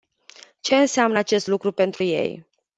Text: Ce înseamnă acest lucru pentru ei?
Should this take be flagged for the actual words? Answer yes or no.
no